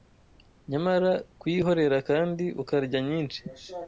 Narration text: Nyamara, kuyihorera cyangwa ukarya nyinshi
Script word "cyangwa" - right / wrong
wrong